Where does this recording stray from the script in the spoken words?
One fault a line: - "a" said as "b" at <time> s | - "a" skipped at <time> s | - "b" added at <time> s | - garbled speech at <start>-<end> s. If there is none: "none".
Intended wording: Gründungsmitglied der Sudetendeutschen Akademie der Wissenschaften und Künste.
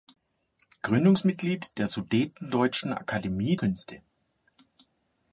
- "der Wissenschaften und" skipped at 3.5 s